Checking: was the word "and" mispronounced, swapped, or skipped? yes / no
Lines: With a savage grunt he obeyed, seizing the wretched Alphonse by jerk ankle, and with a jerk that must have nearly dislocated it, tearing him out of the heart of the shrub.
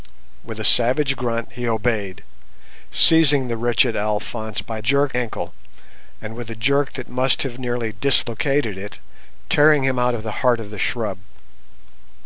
no